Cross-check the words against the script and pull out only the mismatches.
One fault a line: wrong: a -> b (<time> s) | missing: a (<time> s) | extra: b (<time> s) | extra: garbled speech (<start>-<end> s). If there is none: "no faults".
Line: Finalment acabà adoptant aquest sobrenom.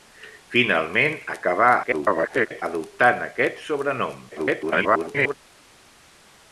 extra: garbled speech (1.8-2.6 s)
extra: garbled speech (4.3-5.3 s)